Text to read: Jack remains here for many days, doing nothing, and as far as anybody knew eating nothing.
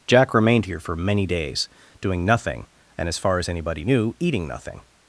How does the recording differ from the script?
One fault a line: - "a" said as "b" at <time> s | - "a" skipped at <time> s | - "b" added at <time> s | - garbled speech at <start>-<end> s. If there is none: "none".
- "remains" said as "remained" at 0.3 s